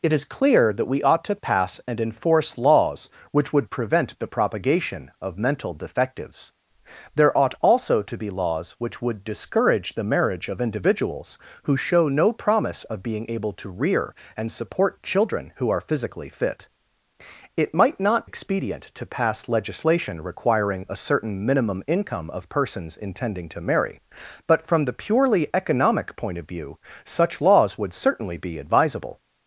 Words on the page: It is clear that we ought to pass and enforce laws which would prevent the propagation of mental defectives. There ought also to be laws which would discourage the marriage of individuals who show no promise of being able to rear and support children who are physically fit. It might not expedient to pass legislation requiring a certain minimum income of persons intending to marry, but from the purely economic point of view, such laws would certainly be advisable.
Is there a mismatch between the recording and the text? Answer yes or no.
no